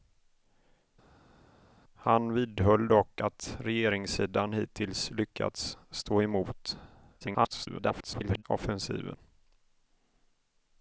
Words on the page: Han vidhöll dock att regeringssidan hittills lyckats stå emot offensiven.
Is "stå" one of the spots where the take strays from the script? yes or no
no